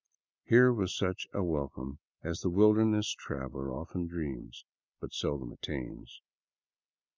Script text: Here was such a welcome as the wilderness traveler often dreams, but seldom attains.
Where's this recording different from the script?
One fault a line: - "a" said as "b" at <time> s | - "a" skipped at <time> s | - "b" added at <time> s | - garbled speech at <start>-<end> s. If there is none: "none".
none